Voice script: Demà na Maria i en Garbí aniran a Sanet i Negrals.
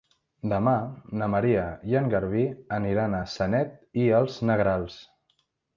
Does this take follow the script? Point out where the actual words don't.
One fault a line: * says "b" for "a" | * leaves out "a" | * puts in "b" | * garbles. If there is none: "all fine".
* puts in "els"